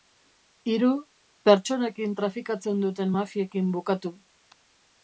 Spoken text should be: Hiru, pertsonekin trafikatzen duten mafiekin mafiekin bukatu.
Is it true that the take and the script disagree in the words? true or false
true